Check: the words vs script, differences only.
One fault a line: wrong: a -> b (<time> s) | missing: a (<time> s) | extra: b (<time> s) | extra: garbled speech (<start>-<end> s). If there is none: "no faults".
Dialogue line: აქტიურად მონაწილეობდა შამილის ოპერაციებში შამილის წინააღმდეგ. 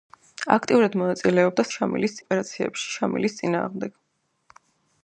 no faults